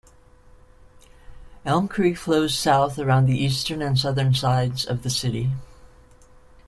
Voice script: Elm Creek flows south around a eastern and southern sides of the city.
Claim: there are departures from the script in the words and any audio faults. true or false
true